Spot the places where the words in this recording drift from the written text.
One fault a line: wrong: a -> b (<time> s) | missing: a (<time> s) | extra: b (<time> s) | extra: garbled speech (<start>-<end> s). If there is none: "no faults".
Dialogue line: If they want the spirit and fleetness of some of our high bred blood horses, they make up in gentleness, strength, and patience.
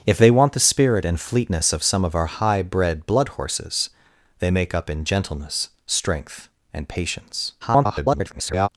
extra: garbled speech (7.6-8.7 s)